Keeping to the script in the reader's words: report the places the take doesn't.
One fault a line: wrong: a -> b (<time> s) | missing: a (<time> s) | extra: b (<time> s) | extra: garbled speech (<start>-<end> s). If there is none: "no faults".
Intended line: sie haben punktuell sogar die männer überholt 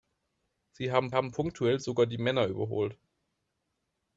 extra: haben (1.1 s)